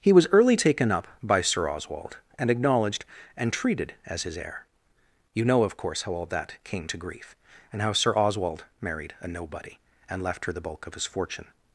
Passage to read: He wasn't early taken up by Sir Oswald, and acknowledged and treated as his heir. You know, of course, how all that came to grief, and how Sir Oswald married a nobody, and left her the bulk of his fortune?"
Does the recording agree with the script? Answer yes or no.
no